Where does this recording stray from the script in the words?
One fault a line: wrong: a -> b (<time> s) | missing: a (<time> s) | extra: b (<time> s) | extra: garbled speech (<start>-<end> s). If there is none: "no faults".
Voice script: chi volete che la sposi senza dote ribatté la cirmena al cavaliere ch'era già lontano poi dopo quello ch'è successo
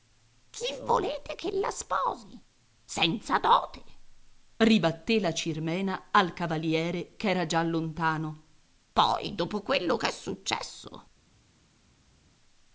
no faults